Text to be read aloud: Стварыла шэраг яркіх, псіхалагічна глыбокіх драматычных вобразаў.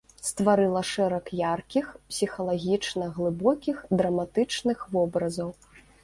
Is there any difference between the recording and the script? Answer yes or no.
no